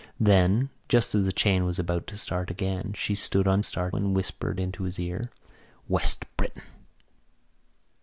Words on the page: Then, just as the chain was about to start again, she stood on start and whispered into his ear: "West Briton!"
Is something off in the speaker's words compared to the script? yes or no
no